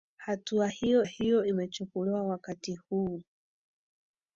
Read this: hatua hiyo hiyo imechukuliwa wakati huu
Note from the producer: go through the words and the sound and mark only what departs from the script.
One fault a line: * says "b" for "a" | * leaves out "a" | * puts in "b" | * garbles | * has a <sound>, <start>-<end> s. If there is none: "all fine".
all fine